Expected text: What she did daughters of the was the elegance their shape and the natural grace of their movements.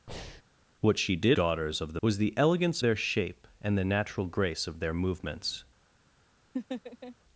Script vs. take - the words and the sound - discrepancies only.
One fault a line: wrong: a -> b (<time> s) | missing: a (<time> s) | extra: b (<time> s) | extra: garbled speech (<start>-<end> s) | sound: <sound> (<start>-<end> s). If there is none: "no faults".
sound: breath (0.1-0.4 s)
sound: laugh (6.5-7.2 s)